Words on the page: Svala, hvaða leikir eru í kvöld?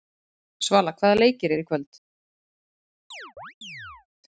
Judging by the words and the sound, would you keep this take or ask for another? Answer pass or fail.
fail